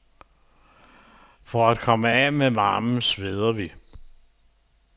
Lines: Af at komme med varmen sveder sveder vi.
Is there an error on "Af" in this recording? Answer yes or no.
yes